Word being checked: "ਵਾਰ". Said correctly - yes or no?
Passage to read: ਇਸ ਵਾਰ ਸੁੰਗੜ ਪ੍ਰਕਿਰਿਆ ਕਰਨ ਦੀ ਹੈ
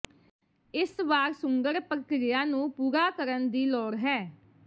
yes